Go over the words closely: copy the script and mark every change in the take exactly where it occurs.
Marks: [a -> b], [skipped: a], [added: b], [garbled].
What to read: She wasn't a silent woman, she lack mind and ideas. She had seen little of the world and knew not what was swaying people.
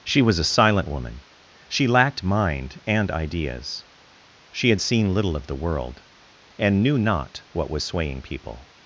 She [wasn't -> was] a silent woman, she [lack -> lacked] mind and ideas. She had seen little of the world and knew not what was swaying people.